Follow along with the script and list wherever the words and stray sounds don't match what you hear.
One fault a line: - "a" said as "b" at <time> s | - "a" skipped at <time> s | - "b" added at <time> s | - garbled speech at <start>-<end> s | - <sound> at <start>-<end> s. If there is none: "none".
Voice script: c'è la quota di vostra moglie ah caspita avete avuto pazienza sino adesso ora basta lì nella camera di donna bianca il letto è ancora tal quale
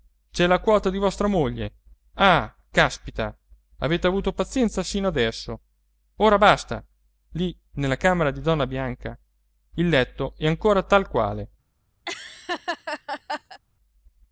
- laugh at 12.0-13.6 s